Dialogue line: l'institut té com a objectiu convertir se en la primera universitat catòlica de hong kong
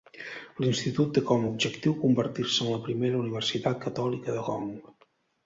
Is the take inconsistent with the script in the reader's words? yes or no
yes